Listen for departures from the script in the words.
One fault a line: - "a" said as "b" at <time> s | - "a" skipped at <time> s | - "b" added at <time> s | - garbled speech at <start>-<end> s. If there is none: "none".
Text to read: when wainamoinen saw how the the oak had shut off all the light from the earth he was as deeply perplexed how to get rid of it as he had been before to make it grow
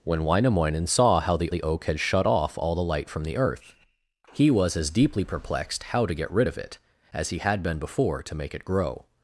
none